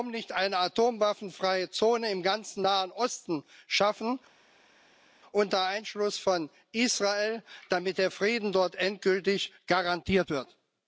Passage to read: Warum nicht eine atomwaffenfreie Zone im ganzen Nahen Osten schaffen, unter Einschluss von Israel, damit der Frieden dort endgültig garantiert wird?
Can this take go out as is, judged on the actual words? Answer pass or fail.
pass